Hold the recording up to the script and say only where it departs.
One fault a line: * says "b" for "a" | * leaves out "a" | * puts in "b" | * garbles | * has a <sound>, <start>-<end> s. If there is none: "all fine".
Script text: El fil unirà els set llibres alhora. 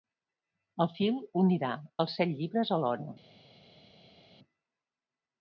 all fine